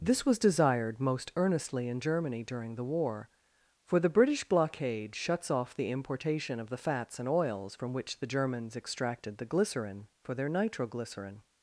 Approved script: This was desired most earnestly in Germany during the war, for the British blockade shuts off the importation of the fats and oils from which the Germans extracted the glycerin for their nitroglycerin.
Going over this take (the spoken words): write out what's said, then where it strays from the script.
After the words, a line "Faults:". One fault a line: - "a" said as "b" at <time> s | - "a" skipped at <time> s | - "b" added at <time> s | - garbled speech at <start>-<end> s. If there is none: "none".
This was desired most earnestly in Germany during the war, for the British blockade shuts off the importation of the fats and oils from which the Germans extracted the glycerin for their nitroglycerin.
Faults:
none